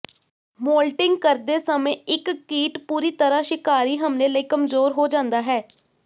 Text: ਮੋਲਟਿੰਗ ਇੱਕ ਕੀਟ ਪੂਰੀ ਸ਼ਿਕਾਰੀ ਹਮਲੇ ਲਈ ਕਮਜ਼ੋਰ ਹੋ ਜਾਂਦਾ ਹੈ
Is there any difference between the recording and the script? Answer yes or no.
yes